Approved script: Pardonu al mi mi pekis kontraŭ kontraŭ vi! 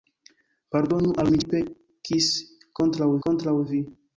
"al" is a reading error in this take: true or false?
false